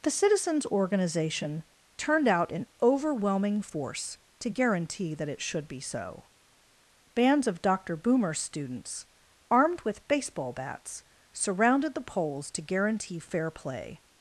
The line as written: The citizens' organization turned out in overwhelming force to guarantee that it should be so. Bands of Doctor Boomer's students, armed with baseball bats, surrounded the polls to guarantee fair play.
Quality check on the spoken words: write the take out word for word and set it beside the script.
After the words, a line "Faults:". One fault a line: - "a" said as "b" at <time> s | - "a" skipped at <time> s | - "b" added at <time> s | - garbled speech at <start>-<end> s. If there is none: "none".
The citizens' organization turned out in overwhelming force to guarantee that it should be so. Bands of Doctor Boomer's students, armed with baseball bats, surrounded the polls to guarantee fair play.
Faults:
none